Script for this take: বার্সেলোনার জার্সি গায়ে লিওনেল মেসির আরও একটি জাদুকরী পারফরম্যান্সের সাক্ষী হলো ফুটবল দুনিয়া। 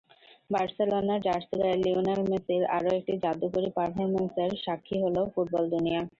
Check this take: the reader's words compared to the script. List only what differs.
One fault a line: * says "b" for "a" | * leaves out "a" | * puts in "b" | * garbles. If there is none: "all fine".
all fine